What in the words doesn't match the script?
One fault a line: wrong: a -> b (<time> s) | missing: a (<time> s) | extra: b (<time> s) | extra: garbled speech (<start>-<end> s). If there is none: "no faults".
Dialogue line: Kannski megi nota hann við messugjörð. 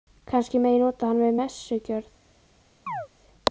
no faults